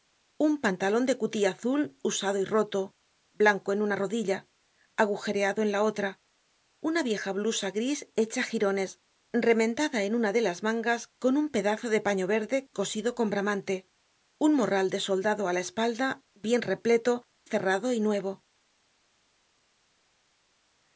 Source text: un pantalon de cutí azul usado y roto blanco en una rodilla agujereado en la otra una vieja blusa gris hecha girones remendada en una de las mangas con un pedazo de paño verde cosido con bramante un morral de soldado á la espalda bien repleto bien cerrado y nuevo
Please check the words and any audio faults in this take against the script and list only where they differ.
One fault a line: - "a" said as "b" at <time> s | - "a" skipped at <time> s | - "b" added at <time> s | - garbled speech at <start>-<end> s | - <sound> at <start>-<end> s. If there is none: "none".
- "bien" skipped at 17.3 s